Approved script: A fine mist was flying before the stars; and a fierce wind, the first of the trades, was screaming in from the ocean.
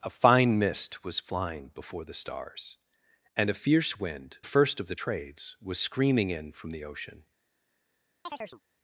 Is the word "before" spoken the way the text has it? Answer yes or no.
yes